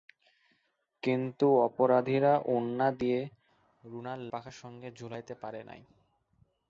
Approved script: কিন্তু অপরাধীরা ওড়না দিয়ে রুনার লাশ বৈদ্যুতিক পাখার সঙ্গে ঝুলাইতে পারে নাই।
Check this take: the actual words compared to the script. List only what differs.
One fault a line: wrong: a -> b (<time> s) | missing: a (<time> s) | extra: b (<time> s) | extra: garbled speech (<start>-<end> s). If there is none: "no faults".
missing: লাশ বৈদ্যুতিক (4.2 s)